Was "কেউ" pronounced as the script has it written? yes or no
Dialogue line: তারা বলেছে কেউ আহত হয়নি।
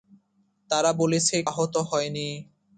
no